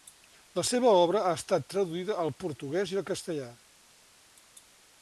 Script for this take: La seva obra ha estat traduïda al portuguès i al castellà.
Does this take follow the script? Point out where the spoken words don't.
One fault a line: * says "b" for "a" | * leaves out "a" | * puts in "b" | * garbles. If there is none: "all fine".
all fine